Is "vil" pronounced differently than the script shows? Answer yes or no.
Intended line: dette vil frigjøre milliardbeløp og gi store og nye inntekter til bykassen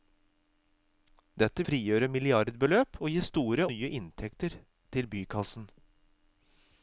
yes